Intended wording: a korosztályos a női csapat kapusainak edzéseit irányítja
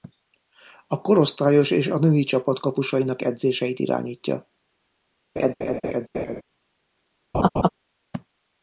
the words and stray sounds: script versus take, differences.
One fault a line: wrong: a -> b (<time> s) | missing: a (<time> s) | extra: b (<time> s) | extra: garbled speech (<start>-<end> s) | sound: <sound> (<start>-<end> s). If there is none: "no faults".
extra: és (1.7 s)
sound: laugh (5.4-6.4 s)
sound: laugh (7.3-7.7 s)